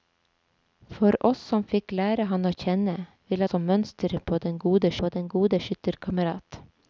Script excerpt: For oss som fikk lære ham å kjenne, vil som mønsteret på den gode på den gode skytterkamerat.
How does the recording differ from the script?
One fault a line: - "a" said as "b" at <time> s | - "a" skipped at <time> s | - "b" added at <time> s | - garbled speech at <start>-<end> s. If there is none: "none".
none